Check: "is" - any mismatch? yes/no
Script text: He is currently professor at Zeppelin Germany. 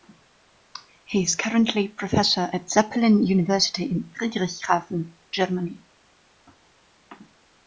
no